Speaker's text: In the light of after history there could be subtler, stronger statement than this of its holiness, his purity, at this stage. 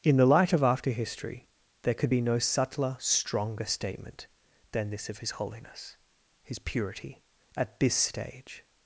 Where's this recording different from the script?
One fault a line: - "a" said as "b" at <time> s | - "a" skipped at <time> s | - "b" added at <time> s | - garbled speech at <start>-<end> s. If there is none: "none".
- "no" added at 2.2 s
- "its" said as "his" at 5.2 s